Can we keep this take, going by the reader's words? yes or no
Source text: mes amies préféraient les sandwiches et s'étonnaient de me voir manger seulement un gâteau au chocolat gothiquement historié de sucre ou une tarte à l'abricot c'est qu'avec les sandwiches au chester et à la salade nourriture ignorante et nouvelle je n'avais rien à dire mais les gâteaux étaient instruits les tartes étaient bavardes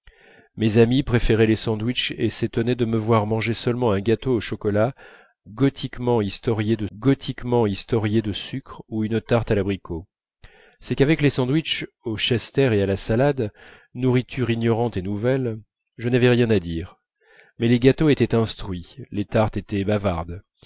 no